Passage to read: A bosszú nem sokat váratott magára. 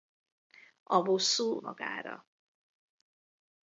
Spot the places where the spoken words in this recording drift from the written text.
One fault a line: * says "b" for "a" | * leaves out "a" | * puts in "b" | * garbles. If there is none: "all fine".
* leaves out "nem sokat váratott"